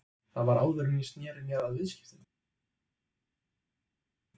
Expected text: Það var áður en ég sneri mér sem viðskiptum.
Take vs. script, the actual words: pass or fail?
fail